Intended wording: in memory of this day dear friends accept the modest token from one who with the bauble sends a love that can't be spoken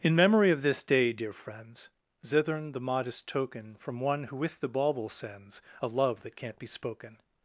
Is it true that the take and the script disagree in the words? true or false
true